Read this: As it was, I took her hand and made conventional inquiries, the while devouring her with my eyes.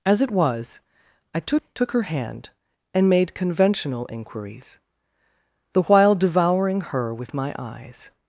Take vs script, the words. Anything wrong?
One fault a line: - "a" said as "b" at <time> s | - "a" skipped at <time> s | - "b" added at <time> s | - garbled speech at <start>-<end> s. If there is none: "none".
- "took" added at 1.7 s